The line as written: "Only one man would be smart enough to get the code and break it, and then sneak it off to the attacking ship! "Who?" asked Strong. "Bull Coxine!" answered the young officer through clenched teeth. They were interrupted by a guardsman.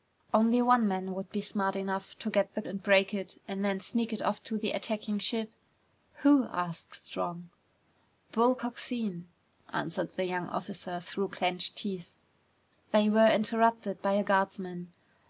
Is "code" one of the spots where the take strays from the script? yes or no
yes